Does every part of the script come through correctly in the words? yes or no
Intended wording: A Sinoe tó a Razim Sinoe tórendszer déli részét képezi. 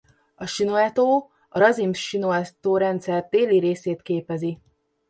yes